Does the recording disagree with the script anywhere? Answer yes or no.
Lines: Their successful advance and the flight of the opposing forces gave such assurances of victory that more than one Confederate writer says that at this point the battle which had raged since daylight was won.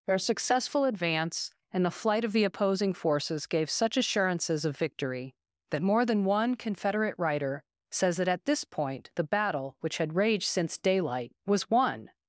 no